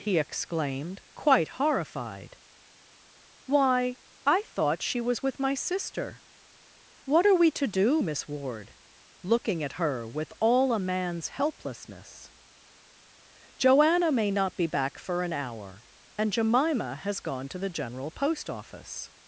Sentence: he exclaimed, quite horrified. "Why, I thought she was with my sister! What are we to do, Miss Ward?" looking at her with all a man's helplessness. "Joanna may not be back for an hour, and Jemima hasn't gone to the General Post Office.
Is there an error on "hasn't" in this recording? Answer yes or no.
yes